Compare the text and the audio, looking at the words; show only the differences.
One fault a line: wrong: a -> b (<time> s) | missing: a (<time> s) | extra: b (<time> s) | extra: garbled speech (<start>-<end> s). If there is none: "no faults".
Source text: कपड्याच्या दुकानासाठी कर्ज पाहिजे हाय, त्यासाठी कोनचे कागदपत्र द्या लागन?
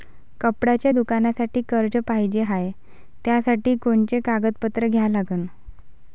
no faults